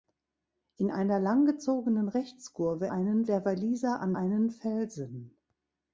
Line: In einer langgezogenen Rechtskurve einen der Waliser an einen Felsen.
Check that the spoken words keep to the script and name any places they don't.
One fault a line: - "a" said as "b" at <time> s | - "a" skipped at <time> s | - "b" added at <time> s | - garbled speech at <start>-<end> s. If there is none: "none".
none